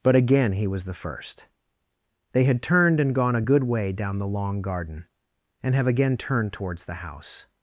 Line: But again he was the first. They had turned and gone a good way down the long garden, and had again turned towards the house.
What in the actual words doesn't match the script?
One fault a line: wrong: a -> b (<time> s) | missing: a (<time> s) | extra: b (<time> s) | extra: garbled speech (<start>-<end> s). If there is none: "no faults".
wrong: had -> have (5.7 s)